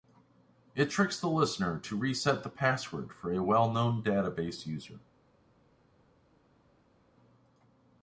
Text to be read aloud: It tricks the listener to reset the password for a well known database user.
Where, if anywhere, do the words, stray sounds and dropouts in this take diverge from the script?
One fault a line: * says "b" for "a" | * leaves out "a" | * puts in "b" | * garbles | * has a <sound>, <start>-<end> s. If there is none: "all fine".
all fine